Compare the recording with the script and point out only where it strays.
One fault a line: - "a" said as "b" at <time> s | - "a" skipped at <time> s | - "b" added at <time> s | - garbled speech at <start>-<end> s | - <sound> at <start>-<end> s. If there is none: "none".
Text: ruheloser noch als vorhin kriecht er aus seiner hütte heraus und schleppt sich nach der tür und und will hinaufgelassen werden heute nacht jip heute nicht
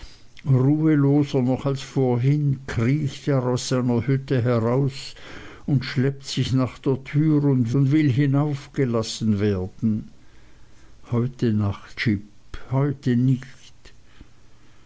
none